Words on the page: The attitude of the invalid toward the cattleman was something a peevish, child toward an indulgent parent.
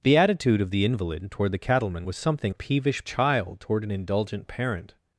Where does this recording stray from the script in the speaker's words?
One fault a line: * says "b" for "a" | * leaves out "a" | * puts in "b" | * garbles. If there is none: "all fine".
all fine